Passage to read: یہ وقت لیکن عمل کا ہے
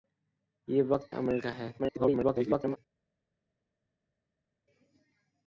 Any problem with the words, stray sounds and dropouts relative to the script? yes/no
yes